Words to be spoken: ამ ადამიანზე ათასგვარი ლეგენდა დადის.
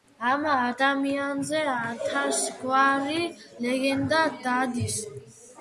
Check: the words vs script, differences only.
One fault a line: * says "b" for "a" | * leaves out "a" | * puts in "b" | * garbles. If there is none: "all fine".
all fine